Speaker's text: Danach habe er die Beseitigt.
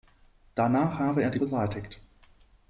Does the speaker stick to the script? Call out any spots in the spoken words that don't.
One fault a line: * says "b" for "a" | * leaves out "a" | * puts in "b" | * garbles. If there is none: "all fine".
all fine